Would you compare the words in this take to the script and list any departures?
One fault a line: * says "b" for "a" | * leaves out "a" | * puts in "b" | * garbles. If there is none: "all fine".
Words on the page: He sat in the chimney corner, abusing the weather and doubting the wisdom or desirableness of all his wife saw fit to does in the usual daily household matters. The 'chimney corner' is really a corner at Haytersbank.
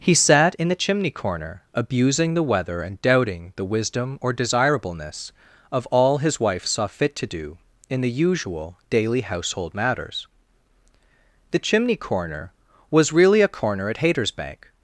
* says "do" for "does"
* says "was" for "is"